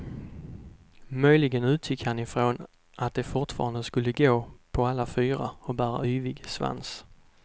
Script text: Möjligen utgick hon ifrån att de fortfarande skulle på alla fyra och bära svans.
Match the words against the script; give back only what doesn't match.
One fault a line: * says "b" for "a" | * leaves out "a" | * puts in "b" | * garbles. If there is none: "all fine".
* says "han" for "hon"
* puts in "gå"
* puts in "yvig"